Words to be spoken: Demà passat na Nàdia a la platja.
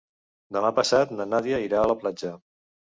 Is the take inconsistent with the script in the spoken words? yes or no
yes